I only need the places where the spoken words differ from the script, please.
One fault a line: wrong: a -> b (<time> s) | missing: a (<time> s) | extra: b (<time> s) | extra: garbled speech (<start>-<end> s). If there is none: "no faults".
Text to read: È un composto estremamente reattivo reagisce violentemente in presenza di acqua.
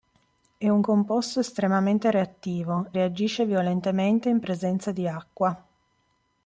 no faults